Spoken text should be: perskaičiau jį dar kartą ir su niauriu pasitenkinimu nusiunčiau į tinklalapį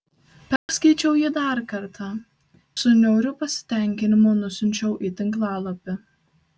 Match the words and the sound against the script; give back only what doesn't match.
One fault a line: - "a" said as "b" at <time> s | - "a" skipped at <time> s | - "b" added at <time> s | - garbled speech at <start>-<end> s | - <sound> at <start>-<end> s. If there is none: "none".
- dropout at 0.6-0.7 s
- "ir" skipped at 2.1 s